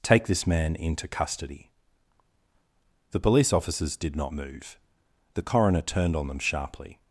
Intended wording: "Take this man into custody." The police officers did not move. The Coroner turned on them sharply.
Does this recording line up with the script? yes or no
yes